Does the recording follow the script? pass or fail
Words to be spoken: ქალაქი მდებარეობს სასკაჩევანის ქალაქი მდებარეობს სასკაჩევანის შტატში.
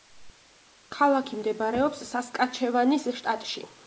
fail